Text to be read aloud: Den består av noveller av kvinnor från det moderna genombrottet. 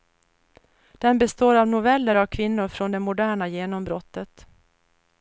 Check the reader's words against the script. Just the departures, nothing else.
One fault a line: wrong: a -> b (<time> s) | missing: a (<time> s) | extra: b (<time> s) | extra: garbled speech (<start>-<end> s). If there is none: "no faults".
no faults